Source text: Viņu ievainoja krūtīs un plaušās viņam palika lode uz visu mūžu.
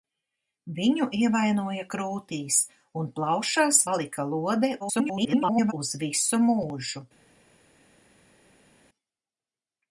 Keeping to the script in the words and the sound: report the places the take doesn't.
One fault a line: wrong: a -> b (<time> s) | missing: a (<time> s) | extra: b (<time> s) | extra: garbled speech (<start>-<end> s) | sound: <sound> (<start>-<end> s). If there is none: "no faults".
missing: viņam (3.8 s)
extra: garbled speech (4.8-5.7 s)